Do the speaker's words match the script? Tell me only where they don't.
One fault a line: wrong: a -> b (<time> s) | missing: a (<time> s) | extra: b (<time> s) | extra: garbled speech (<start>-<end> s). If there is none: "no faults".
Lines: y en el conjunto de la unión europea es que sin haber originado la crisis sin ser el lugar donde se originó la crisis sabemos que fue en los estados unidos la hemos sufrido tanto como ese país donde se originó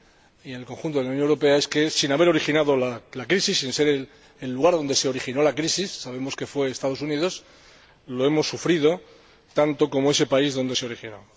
no faults